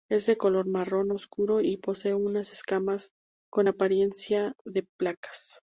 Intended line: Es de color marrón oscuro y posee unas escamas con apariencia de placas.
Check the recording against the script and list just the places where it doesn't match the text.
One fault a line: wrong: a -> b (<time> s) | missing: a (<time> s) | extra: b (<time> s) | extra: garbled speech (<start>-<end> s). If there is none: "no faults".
no faults